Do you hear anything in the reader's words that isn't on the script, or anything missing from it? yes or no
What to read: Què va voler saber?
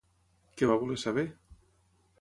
no